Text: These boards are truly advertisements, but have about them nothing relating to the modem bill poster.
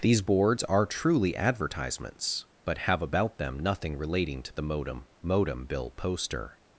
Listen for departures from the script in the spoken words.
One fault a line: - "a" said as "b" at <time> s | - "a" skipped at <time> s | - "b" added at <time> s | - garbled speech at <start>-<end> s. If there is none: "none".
- "modem" added at 5.2 s